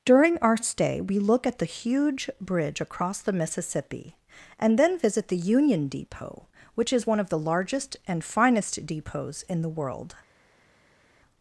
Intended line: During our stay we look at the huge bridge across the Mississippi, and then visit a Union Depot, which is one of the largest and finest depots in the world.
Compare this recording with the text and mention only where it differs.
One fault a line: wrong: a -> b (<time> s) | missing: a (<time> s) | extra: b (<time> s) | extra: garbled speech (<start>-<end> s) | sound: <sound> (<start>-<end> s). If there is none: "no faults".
wrong: a -> the (5.3 s)